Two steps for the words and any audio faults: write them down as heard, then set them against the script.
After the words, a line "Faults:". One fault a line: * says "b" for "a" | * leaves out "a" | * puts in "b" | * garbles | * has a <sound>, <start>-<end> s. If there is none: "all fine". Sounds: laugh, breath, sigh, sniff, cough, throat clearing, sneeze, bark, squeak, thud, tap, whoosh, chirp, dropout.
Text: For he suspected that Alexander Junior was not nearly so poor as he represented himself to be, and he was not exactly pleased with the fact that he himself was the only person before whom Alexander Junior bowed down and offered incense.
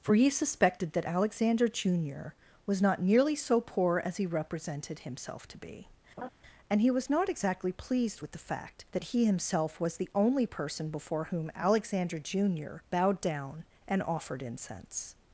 For he suspected that Alexander Junior was not nearly so poor as he represented himself to be, and he was not exactly pleased with the fact that he himself was the only person before whom Alexander Junior bowed down and offered incense.
Faults:
* has a laugh, 6.2-6.3 s